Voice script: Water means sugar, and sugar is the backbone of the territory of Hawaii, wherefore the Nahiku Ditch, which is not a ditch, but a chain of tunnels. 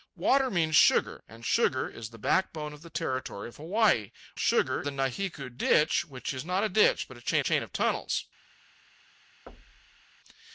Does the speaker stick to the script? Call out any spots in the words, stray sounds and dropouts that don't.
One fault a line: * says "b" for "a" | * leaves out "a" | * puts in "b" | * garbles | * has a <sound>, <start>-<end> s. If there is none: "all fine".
* says "sugar" for "wherefore"
* puts in "chain"
* has a thud, 9.5-10.0 s